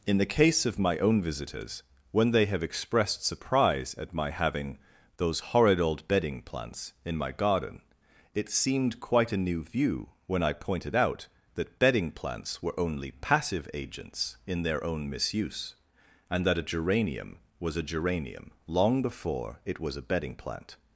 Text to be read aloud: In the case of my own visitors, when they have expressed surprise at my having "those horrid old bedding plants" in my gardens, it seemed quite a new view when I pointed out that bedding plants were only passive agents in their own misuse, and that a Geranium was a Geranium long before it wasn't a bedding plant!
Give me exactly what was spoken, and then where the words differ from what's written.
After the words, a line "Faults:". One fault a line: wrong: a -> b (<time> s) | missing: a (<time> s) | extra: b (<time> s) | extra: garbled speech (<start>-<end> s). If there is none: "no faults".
In the case of my own visitors, when they have expressed surprise at my having "those horrid old bedding plants" in my garden, it seemed quite a new view when I pointed out that bedding plants were only passive agents in their own misuse, and that a Geranium was a Geranium long before it was a bedding plant!
Faults:
wrong: gardens -> garden (7.3 s)
wrong: wasn't -> was (19.8 s)